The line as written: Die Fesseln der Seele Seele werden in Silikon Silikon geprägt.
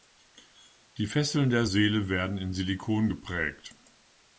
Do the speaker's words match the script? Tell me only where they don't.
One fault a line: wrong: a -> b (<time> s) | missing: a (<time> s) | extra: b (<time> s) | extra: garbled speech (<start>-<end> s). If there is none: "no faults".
missing: Seele (2.1 s)
missing: Silikon (3.1 s)